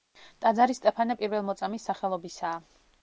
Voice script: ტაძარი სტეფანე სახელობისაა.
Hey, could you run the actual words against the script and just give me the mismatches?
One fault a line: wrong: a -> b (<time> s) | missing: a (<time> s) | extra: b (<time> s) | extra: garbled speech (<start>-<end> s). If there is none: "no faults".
extra: პირველმოწამის (1.2 s)